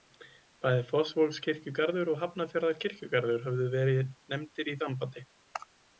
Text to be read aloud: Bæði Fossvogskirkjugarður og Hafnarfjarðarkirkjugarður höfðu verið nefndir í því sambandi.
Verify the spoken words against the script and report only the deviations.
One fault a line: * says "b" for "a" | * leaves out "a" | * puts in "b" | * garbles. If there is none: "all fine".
* leaves out "því"